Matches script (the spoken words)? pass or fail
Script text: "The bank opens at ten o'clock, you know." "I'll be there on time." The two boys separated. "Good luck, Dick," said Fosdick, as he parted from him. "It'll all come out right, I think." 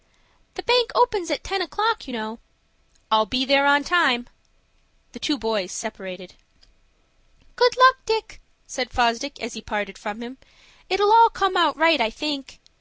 pass